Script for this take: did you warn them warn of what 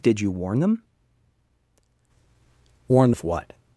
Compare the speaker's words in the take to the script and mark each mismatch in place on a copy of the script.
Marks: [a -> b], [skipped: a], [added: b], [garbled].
did you warn them warn of what